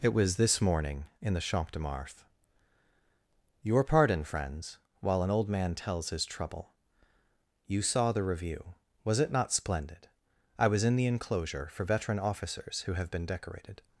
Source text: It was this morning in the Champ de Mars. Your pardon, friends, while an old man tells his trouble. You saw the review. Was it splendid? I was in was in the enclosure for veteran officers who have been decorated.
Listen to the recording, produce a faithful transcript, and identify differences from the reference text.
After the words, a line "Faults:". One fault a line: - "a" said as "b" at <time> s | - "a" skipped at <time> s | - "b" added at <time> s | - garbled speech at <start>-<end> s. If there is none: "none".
It was this morning in the Champ de Mars. Your pardon, friends, while an old man tells his trouble. You saw the review. Was it not splendid? I was in the enclosure for veteran officers who have been decorated.
Faults:
- "not" added at 9.3 s
- "was in" skipped at 10.9 s